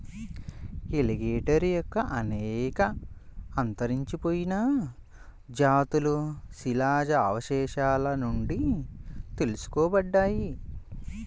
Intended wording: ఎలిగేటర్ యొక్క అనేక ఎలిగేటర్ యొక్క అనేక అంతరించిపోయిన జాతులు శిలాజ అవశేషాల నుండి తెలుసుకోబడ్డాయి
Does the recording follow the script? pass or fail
fail